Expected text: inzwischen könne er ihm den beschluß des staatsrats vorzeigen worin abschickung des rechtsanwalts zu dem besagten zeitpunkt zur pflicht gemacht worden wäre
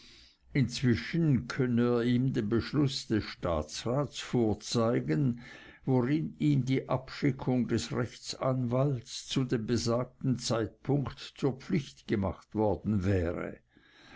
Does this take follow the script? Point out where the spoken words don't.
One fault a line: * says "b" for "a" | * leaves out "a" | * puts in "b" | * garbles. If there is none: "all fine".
* puts in "ihm die"